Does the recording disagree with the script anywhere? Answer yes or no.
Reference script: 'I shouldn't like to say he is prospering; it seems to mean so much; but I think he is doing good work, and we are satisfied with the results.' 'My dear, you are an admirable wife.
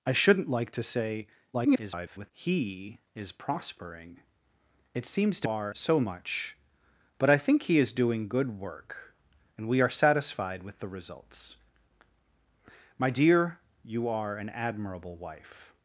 yes